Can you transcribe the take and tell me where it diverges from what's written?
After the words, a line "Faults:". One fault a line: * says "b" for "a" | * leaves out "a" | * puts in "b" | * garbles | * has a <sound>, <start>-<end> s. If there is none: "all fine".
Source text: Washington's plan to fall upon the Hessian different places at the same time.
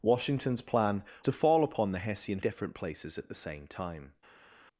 Washington's plan to fall upon the Hessian different places at the same time.
Faults:
all fine